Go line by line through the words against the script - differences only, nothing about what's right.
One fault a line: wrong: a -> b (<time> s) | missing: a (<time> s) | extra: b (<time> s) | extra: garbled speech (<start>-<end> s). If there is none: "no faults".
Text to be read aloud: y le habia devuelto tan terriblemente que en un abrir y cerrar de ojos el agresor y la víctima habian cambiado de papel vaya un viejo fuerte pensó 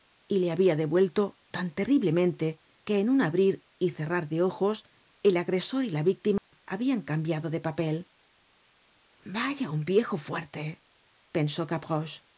no faults